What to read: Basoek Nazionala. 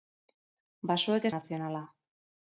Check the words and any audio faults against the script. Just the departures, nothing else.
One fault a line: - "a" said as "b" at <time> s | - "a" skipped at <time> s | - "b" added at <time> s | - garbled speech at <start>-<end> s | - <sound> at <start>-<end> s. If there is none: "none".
none